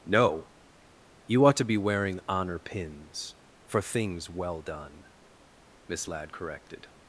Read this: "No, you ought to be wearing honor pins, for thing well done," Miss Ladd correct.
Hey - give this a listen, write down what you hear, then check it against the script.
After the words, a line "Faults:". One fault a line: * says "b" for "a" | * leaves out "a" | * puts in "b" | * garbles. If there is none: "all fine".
"No, you ought to be wearing honor pins, for things well done," Miss Ladd corrected.
Faults:
* says "things" for "thing"
* says "corrected" for "correct"